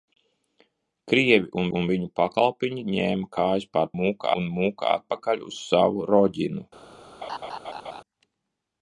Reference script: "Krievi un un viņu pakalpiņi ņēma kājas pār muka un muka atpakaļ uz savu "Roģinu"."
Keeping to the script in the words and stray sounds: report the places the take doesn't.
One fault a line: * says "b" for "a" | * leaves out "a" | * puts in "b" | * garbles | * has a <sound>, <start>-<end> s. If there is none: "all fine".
* has a laugh, 7.2-8.0 s